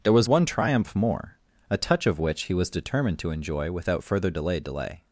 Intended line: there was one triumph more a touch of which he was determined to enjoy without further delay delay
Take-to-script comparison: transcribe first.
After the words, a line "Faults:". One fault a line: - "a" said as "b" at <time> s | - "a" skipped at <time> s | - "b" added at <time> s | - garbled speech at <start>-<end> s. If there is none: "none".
there was one triumph more a touch of which he was determined to enjoy without further delay delay
Faults:
none